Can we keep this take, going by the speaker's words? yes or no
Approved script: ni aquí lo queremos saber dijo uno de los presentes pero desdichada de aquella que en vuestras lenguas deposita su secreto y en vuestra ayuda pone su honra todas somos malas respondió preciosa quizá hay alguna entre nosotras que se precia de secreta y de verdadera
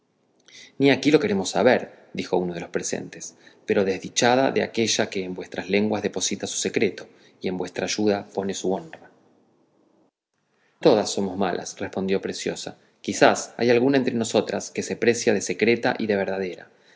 yes